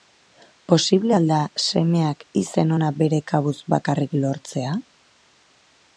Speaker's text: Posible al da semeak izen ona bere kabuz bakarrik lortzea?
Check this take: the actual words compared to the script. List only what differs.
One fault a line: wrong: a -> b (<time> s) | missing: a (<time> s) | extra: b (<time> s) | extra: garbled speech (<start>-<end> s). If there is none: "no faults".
no faults